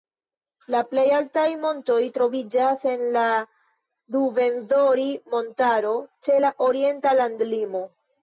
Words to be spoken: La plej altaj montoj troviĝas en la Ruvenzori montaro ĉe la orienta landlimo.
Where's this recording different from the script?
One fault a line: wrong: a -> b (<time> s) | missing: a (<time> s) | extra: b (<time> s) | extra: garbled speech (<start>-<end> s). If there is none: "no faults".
no faults